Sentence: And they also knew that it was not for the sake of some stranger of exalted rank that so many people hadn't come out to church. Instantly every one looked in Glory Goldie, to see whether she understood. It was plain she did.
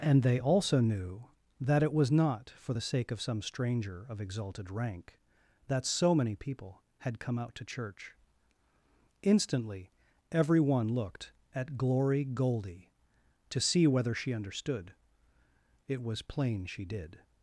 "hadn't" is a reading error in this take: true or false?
true